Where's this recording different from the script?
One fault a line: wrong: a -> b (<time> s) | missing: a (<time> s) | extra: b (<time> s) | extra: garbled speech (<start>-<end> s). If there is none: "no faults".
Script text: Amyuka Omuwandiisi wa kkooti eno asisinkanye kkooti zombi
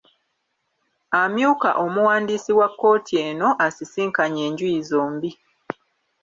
wrong: kkooti -> enjuyi (4.5 s)